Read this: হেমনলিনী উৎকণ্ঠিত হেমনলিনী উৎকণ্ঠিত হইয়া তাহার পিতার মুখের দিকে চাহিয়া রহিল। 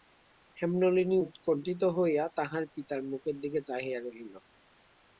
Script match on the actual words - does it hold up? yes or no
no